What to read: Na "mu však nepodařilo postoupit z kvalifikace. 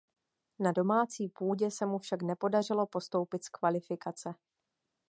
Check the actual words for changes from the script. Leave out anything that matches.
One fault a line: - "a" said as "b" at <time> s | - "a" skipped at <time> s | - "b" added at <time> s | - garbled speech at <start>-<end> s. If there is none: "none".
- "domácí půdě se" added at 0.7 s